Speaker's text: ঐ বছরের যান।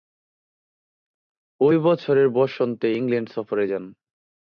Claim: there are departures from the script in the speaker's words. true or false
true